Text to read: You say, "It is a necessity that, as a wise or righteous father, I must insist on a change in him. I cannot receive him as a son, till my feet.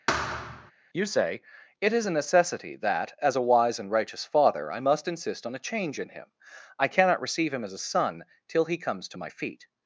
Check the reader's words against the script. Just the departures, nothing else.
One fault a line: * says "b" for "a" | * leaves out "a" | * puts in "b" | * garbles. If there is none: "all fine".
* says "and" for "or"
* puts in "he comes to"